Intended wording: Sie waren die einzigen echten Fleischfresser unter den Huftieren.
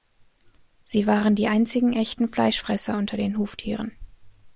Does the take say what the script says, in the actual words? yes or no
yes